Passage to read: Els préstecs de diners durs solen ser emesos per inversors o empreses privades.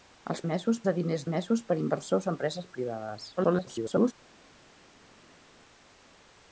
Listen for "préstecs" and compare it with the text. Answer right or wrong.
wrong